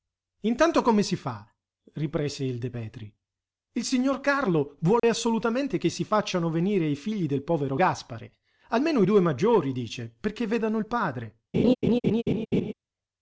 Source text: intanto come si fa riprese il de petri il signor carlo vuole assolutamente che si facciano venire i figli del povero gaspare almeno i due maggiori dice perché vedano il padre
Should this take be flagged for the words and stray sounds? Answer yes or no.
yes